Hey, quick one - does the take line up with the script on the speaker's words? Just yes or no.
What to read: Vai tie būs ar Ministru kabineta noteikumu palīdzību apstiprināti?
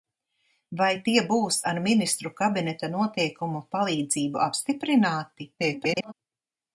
no